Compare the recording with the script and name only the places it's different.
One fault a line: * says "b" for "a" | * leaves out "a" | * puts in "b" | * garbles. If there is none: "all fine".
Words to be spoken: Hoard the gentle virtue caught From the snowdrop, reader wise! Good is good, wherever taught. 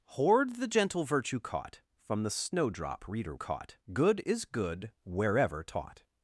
* says "caught" for "wise"